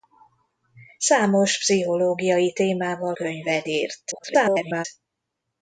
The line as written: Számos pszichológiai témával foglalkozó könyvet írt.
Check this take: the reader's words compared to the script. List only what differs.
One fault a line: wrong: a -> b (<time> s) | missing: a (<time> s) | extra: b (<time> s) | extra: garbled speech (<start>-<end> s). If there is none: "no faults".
missing: foglalkozó (3.1 s)
extra: garbled speech (4.1-4.8 s)